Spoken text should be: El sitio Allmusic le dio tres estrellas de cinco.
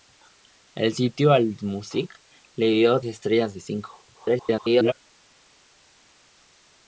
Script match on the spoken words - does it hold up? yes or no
no